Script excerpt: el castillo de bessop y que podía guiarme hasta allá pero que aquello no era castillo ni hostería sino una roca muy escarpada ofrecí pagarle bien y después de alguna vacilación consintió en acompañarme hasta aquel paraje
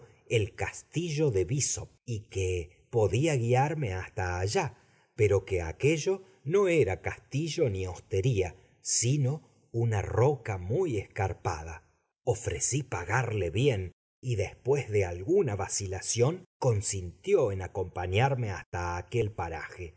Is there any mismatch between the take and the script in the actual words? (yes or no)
no